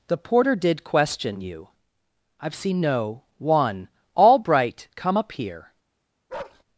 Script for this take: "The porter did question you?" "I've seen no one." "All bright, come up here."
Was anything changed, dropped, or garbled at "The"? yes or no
no